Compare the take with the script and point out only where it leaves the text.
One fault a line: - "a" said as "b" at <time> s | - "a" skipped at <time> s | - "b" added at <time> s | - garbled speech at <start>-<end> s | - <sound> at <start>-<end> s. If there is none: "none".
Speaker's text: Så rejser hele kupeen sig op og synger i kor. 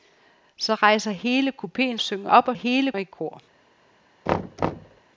- "sig" said as "synger" at 2.0 s
- "synger" said as "hele" at 2.5 s
- thud at 4.3-5.0 s